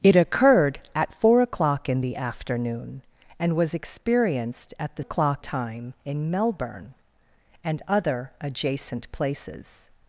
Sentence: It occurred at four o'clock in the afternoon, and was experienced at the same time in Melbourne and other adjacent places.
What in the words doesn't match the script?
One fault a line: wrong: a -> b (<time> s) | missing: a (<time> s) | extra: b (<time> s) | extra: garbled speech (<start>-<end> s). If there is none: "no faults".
wrong: same -> o'clock (5.0 s)